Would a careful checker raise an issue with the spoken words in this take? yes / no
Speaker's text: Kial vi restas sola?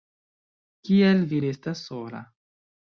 no